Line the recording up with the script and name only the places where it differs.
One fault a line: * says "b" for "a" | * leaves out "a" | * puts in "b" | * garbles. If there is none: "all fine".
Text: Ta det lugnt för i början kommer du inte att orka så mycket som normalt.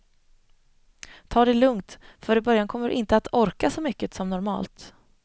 all fine